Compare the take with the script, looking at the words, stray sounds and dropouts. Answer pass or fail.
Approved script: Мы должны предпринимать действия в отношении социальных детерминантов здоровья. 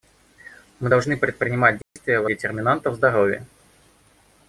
fail